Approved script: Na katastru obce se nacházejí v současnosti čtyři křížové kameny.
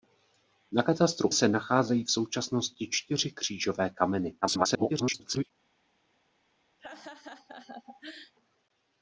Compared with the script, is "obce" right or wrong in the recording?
wrong